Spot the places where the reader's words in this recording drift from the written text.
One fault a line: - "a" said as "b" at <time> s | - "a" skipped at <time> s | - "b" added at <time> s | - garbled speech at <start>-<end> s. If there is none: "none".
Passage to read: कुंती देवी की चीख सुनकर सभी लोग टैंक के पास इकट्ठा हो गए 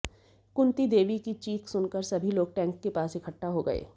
none